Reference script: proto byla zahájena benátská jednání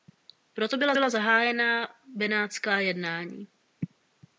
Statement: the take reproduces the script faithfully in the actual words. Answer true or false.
false